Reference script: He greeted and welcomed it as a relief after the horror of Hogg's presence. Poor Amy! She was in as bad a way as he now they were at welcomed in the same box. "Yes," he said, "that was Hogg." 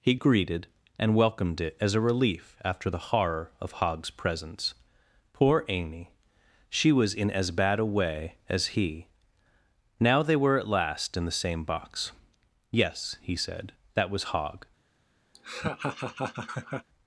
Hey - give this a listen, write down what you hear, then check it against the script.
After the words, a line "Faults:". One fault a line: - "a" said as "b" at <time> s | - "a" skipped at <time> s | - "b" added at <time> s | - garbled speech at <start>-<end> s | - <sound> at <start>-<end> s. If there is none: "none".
He greeted and welcomed it as a relief after the horror of Hogg's presence. Poor Amy! She was in as bad a way as he now they were at last in the same box. "Yes," he said, "that was Hogg."
Faults:
- "welcomed" said as "last" at 10.7 s
- laugh at 15.3-16.9 s